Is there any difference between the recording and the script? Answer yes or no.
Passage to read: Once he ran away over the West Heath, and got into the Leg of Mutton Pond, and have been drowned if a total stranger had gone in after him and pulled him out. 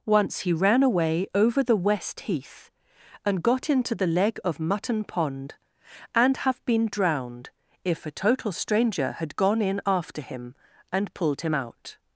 no